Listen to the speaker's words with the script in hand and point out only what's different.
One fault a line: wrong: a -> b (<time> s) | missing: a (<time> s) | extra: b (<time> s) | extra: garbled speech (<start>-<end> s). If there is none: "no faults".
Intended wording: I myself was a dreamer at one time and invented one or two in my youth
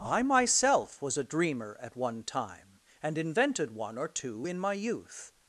no faults